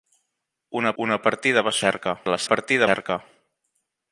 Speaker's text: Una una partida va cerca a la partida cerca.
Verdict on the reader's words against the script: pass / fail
pass